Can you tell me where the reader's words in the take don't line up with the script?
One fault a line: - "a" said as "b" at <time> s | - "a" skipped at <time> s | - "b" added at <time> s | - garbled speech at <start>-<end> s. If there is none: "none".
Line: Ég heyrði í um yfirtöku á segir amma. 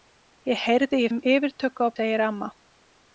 none